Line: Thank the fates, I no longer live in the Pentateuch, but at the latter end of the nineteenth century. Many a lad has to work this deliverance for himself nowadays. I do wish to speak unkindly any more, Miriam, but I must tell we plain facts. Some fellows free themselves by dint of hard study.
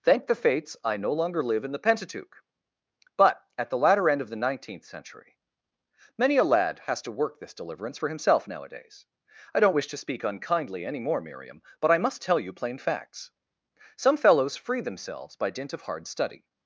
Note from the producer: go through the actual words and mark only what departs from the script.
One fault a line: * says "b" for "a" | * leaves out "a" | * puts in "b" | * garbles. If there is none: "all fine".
* says "don't" for "do"
* says "you" for "we"